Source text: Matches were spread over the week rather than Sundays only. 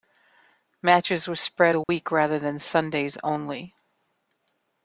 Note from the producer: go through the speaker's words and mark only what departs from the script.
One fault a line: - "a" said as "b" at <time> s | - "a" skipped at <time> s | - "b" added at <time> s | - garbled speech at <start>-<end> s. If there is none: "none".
- "over" skipped at 1.8 s